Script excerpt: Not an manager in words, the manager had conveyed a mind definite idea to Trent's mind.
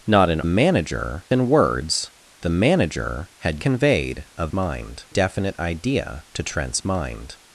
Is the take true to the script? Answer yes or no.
yes